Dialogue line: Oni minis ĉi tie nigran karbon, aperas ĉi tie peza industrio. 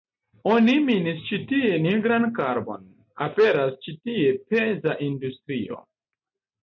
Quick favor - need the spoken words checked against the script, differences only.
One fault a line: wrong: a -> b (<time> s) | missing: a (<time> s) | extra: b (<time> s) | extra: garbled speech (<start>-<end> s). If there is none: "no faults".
no faults